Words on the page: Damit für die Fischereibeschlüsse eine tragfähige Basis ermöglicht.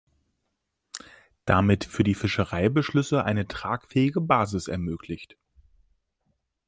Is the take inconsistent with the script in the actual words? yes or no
no